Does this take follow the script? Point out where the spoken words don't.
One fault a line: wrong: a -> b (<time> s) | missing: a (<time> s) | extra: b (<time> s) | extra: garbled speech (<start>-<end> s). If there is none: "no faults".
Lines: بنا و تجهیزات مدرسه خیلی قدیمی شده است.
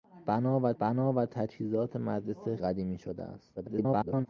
extra: بنا و (0.8 s)
missing: خیلی (2.6 s)
extra: garbled speech (3.6-4.3 s)